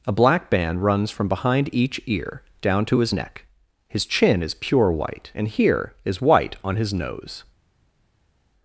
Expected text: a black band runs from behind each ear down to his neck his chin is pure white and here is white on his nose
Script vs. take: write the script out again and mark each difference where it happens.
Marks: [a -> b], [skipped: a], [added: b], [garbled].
a black band runs from behind each ear down to his neck his chin is pure white and here is white on his nose